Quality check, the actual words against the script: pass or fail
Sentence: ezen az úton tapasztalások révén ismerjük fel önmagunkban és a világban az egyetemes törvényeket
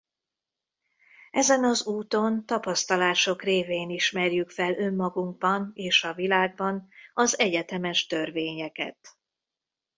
pass